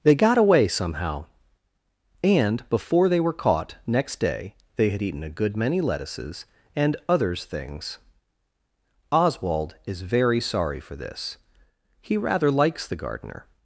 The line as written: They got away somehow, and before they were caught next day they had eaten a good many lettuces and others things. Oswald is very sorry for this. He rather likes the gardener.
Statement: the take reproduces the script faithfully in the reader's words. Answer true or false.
true